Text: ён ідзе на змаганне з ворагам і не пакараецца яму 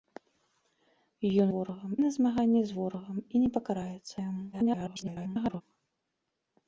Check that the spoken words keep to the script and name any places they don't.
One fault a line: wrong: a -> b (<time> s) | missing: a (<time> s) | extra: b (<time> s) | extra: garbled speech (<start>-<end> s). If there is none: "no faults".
wrong: ідзе -> ворагам (1.5 s)
extra: garbled speech (4.5-5.6 s)